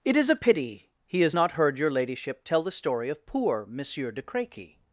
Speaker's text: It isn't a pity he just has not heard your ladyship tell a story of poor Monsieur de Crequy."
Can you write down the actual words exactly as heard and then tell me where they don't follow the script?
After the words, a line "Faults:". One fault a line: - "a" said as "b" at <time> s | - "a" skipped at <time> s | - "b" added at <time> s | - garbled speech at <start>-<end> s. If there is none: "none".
It is a pity he has not heard your ladyship tell the story of poor Monsieur de Crequy."
Faults:
- "isn't" said as "is" at 0.2 s
- "just" skipped at 1.2 s
- "a" said as "the" at 2.6 s